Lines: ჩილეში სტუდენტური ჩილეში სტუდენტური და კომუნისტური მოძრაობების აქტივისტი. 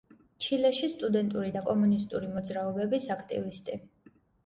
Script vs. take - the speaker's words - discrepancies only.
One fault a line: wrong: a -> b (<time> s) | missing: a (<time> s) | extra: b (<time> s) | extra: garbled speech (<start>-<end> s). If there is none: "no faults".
missing: ჩილეში სტუდენტური (1.5 s)